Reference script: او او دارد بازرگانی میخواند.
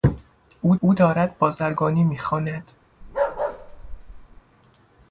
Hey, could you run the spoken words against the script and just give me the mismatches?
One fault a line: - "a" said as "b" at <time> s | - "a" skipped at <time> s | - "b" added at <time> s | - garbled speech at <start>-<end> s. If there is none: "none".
none